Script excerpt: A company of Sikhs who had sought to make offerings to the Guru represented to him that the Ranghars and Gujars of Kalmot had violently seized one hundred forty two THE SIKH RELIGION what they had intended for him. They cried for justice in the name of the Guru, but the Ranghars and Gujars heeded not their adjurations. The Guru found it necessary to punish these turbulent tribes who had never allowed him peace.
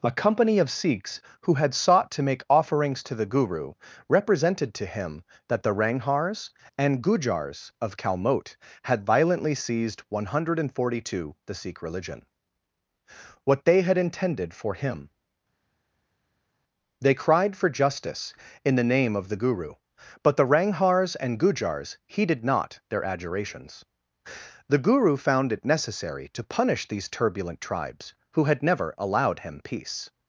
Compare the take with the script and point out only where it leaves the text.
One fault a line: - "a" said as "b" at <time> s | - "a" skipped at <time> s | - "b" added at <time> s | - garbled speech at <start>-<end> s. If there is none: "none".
none